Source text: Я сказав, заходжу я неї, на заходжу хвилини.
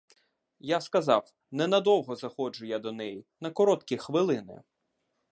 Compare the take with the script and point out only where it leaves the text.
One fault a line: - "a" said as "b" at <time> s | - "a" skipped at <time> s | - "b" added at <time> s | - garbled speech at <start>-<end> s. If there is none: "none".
- "ненадовго" added at 1.5 s
- "до" added at 2.8 s
- "заходжу" said as "короткі" at 3.5 s